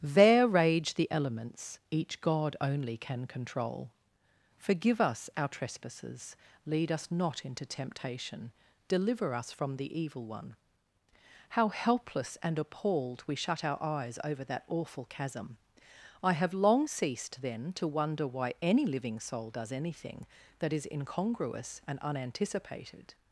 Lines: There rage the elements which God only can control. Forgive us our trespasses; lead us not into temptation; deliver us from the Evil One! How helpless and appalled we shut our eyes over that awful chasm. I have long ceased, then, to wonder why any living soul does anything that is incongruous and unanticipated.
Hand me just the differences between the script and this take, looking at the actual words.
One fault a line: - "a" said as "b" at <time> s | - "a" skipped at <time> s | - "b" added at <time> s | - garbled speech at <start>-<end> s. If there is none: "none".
- "which" said as "each" at 1.9 s